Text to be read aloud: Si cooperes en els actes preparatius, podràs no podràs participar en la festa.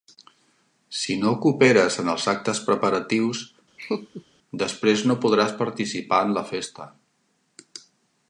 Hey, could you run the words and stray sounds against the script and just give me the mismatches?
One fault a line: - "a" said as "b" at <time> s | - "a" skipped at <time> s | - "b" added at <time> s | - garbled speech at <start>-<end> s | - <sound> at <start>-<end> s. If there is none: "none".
- "no" added at 1.2 s
- laugh at 3.8-4.2 s
- "podràs" said as "després" at 4.6 s